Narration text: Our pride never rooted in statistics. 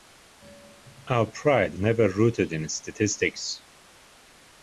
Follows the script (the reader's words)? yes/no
yes